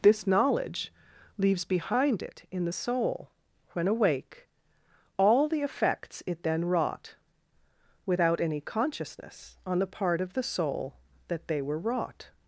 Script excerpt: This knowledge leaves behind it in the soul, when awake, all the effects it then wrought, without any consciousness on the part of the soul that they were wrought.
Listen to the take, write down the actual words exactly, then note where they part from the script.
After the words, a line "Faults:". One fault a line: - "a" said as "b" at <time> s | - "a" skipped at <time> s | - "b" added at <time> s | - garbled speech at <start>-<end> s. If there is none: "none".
This knowledge leaves behind it in the soul, when awake, all the effects it then wrought, without any consciousness on the part of the soul that they were wrought.
Faults:
none